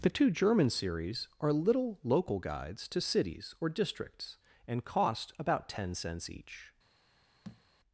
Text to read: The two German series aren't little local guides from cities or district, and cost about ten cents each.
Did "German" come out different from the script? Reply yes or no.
no